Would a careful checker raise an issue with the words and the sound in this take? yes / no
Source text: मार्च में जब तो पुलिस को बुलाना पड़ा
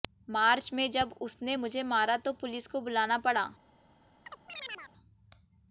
yes